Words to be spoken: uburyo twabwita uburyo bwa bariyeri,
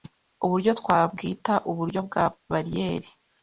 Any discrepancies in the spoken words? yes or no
no